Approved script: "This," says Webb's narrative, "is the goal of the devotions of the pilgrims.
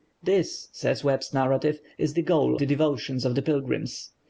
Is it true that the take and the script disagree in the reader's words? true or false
true